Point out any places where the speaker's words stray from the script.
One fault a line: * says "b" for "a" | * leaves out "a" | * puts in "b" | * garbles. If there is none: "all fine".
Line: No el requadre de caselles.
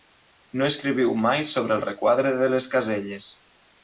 * puts in "escriviu mai sobre"
* puts in "les"